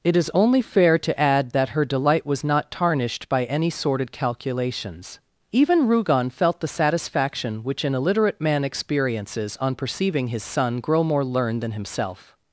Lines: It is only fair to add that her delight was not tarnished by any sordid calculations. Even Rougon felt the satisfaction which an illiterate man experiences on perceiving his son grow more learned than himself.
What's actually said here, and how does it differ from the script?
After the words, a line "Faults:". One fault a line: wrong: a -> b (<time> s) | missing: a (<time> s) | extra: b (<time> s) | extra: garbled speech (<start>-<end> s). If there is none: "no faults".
It is only fair to add that her delight was not tarnished by any sordid calculations. Even Rougon felt the satisfaction which an illiterate man experiences on perceiving his son grow more learned than himself.
Faults:
no faults